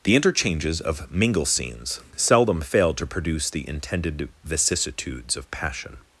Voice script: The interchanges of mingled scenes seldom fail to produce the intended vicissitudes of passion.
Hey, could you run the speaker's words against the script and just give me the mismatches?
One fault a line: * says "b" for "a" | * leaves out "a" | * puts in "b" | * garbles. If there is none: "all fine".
* says "mingle" for "mingled"